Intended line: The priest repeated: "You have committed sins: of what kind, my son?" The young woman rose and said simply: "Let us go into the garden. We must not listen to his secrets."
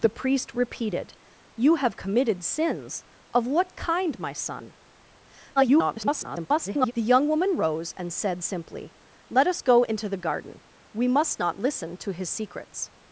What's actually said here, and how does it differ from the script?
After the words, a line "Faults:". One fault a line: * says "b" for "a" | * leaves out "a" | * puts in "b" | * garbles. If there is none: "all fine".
The priest repeated: "You have committed sins: of what kind, my son?" [garbled] The young woman rose and said simply: "Let us go into the garden. We must not listen to his secrets."
Faults:
* garbles